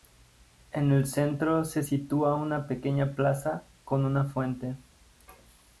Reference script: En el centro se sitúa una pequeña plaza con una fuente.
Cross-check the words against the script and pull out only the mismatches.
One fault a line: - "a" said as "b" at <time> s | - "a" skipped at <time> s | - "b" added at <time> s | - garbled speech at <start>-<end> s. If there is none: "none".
none